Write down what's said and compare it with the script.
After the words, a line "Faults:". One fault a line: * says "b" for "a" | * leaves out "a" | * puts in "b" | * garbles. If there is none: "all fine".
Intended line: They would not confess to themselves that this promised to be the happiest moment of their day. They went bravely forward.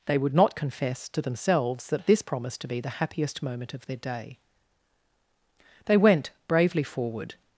They would not confess to themselves that this promised to be the happiest moment of their day. They went bravely forward.
Faults:
all fine